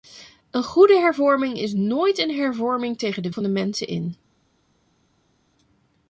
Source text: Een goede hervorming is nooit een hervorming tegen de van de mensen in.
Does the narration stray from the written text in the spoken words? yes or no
no